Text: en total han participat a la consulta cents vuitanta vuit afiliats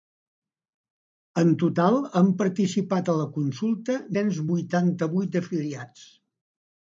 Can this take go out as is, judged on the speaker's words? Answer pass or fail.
pass